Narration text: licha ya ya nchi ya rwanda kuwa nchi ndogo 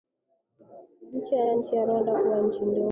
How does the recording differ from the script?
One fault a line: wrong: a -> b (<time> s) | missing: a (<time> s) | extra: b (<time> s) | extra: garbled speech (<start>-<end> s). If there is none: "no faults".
no faults